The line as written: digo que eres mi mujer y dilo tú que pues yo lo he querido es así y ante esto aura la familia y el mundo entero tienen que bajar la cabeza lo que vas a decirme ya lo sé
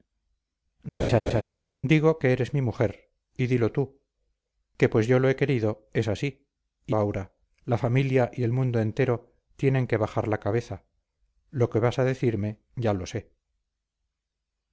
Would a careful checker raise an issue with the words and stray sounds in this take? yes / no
yes